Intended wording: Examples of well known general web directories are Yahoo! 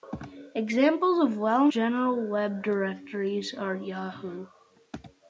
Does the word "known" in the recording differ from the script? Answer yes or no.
yes